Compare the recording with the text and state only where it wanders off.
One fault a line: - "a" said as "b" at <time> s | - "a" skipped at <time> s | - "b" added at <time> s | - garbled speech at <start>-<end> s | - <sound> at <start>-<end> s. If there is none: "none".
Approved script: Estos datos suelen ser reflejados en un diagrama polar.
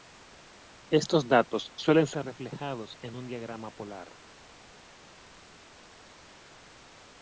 none